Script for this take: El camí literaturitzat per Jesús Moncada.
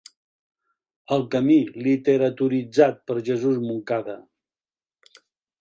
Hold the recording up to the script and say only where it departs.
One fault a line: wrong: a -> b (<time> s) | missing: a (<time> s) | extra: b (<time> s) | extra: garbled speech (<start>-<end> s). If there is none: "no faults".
no faults